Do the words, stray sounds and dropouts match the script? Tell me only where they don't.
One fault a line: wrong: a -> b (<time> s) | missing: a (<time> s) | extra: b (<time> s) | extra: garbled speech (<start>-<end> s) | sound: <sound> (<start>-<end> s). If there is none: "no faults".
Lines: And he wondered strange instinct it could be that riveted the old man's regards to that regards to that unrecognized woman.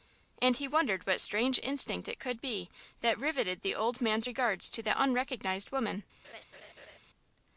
extra: what (1.1 s)
missing: regards to that (5.0 s)
sound: laugh (6.2-7.0 s)